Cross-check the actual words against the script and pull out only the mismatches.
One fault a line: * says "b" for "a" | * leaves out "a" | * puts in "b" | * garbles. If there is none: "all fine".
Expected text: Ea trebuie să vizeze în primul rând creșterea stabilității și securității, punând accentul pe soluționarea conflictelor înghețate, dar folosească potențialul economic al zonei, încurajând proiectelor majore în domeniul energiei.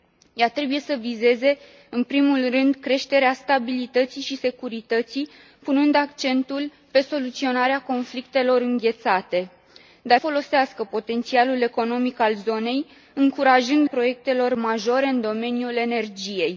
all fine